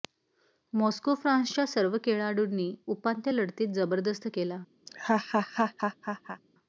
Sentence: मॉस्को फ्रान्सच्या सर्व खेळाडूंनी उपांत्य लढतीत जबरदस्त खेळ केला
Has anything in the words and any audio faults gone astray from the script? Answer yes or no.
yes